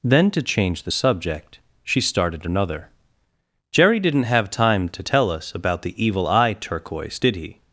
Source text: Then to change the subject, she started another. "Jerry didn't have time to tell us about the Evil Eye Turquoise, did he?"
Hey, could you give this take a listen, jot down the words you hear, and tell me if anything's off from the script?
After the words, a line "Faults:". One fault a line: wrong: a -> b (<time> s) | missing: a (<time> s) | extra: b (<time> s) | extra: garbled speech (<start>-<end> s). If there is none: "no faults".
Then to change the subject, she started another. "Jerry didn't have time to tell us about the Evil Eye Turquoise, did he?"
Faults:
no faults